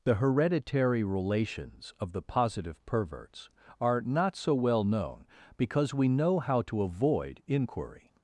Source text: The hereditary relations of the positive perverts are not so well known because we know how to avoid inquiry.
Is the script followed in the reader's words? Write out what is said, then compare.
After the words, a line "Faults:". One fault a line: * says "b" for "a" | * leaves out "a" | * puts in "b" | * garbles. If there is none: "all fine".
The hereditary relations of the positive perverts are not so well known because we know how to avoid inquiry.
Faults:
all fine